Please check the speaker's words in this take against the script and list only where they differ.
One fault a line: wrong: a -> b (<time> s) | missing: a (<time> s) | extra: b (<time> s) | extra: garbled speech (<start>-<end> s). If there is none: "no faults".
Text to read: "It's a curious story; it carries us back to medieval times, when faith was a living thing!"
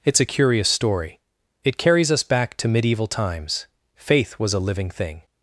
missing: when (3.7 s)